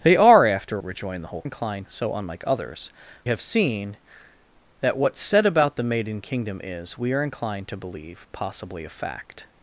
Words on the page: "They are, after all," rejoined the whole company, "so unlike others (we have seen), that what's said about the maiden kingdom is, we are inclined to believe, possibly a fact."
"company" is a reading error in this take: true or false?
true